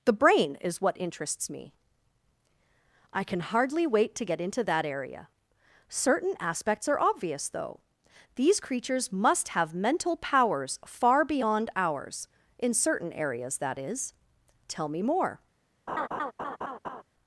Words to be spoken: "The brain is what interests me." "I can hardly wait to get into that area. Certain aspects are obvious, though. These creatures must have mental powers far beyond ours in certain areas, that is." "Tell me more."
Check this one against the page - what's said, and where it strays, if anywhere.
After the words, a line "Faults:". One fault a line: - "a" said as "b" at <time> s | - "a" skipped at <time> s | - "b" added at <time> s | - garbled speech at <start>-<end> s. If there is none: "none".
"The brain is what interests me." "I can hardly wait to get into that area. Certain aspects are obvious, though. These creatures must have mental powers far beyond ours in certain areas, that is." "Tell me more."
Faults:
none